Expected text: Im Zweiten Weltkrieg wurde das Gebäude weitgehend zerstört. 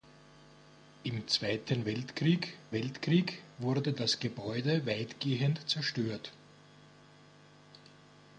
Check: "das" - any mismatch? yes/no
no